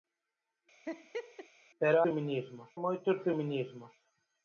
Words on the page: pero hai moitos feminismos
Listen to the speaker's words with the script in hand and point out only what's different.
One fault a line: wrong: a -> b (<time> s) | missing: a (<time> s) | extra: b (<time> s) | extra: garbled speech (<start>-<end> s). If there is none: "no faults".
wrong: hai -> feminismos (2.0 s)